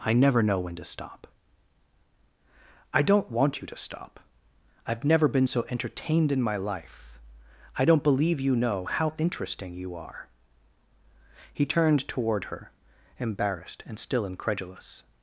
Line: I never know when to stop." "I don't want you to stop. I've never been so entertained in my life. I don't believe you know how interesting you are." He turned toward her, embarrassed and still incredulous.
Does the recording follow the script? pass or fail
pass